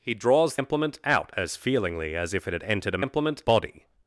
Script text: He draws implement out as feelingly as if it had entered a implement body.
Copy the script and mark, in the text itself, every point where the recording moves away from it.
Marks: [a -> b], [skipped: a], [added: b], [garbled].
He draws implement out as feelingly as if it had entered a implement body.